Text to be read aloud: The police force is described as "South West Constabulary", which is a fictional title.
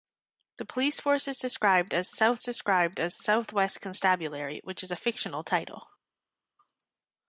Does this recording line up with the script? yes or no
no